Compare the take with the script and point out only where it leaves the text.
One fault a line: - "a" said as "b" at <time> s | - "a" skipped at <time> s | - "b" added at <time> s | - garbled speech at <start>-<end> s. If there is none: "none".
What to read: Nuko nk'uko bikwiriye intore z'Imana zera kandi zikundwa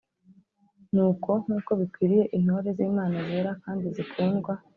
none